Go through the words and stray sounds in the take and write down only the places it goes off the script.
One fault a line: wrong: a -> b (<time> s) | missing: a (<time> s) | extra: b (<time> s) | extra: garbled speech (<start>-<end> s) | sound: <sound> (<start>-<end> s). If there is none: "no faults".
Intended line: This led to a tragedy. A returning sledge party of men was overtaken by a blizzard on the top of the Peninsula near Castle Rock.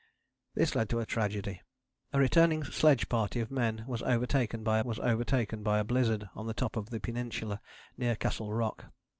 extra: was overtaken by (4.8 s)